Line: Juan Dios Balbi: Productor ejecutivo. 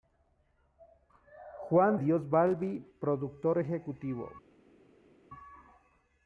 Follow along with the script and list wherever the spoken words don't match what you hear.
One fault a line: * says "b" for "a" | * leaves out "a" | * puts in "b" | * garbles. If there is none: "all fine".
all fine